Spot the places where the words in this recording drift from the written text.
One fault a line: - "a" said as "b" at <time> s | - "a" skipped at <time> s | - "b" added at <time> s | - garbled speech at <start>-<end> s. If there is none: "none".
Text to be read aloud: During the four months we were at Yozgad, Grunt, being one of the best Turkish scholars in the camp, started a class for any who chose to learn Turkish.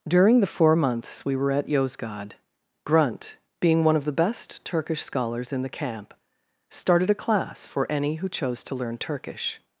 none